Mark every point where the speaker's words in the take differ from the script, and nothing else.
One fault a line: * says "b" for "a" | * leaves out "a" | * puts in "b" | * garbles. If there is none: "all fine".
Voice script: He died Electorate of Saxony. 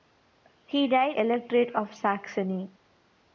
all fine